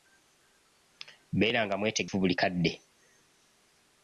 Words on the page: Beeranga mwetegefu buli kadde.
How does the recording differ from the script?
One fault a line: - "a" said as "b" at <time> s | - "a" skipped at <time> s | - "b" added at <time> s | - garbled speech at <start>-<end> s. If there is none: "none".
none